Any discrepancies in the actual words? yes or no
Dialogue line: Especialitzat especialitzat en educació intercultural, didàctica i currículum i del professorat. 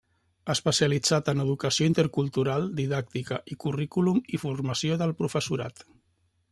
yes